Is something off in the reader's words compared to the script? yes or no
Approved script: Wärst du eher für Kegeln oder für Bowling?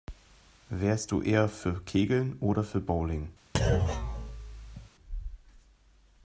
no